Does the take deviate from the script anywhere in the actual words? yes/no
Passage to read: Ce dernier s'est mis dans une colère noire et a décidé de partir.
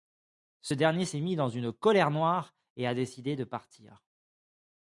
no